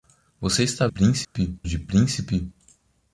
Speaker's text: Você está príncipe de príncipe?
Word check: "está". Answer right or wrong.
right